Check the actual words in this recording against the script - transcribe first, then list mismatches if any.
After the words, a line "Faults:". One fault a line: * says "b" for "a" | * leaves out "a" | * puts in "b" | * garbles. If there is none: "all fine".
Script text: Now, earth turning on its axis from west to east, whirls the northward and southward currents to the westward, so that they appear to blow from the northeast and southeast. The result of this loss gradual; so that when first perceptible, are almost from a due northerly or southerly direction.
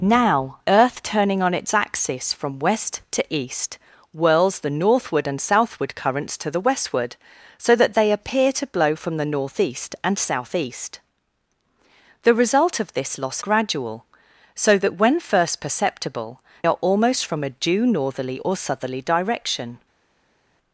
Now, earth turning on its axis from west to east, whirls the northward and southward currents to the westward, so that they appear to blow from the northeast and southeast. The result of this loss gradual; so that when first perceptible, are almost from a due northerly or southerly direction.
Faults:
all fine